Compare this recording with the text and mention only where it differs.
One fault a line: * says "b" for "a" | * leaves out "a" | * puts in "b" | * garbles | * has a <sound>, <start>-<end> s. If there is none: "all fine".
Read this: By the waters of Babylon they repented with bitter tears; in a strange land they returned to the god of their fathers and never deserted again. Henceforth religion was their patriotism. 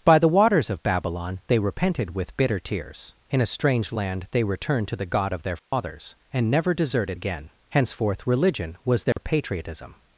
* has a dropout, 5.6-5.7 s
* has a dropout, 9.1-9.2 s